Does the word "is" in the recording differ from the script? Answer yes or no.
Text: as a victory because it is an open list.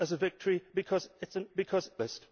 no